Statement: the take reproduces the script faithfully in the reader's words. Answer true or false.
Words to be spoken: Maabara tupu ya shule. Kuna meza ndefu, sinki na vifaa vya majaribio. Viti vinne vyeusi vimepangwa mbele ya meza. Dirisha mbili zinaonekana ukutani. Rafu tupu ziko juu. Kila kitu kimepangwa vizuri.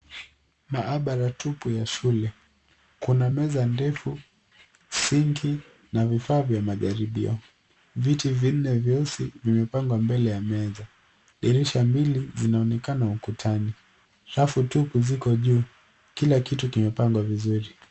true